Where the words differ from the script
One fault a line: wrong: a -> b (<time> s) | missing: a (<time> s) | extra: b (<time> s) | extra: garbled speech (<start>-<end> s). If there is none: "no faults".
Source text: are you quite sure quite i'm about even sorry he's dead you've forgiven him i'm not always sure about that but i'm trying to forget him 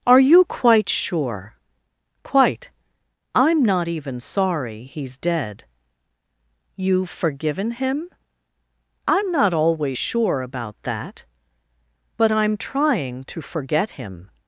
wrong: about -> not (3.6 s)